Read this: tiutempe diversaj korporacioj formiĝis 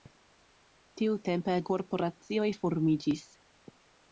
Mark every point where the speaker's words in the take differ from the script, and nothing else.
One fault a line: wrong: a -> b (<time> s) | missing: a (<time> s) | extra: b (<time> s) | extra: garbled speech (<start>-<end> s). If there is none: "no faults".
missing: diversaj (1.6 s)